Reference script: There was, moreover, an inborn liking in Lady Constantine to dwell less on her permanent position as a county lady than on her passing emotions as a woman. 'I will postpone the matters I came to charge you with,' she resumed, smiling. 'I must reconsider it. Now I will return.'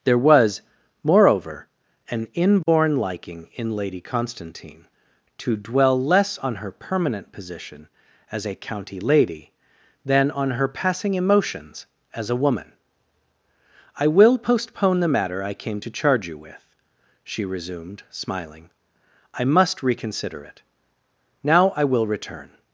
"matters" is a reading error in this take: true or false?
true